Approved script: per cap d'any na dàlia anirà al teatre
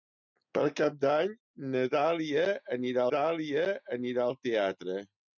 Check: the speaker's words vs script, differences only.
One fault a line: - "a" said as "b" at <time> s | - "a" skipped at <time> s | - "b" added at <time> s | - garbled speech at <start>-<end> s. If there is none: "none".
- "dàlia anirà" added at 3.2 s